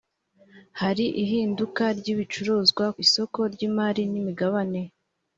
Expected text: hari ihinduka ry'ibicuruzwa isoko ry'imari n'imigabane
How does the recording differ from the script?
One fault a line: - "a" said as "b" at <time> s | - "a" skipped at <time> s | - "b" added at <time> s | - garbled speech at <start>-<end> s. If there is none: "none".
none